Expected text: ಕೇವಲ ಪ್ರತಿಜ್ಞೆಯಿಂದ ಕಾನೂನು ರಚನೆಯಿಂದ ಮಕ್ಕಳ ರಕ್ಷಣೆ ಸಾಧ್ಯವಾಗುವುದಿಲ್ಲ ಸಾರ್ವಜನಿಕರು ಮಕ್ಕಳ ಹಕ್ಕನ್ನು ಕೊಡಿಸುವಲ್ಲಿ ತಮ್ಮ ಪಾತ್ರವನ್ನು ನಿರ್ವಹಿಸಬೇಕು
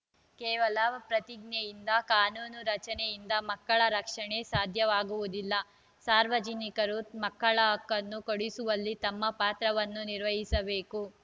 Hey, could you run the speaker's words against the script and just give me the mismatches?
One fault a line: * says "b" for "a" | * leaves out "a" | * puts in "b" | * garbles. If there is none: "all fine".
all fine